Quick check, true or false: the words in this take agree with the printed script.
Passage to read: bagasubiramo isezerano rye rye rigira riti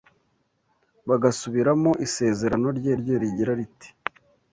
true